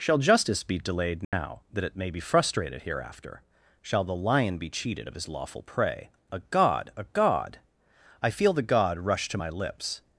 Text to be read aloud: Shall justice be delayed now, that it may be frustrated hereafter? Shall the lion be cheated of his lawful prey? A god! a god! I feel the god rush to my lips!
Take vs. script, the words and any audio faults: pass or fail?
fail